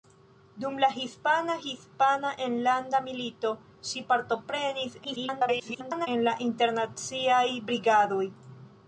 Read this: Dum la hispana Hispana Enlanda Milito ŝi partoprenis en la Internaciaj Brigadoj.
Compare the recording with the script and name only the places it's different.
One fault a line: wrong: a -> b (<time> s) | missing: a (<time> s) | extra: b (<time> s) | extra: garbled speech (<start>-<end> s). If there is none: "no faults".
extra: garbled speech (5.0-6.1 s)